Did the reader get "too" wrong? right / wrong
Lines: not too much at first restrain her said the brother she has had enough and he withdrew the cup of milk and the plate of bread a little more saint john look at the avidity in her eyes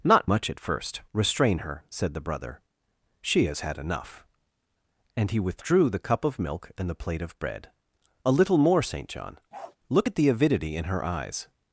wrong